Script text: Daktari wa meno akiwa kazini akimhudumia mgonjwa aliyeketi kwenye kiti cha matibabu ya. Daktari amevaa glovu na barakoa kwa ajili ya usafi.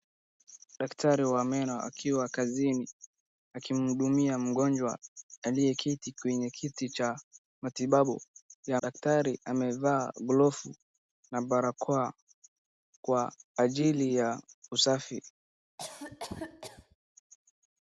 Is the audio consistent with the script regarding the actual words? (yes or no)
yes